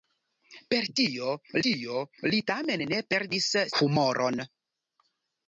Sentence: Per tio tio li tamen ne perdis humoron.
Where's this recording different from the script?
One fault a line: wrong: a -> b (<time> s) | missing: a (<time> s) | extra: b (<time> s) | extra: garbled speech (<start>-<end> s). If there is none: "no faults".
no faults